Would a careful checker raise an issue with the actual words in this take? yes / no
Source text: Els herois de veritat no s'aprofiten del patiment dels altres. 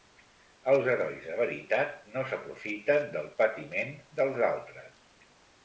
no